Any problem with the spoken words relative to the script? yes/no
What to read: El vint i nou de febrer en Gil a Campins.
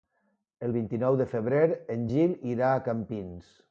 yes